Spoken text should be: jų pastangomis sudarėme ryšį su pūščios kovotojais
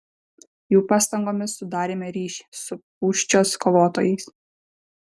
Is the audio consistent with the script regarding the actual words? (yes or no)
yes